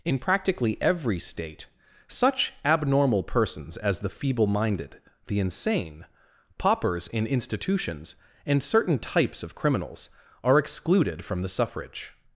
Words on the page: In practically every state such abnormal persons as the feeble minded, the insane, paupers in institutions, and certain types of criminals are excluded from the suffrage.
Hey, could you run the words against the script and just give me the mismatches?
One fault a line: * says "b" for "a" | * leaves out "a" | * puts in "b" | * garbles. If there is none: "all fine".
all fine